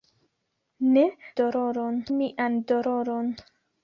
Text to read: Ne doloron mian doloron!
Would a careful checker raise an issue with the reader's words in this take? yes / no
no